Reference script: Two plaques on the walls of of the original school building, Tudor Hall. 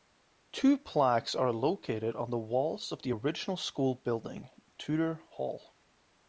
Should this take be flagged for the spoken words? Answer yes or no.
yes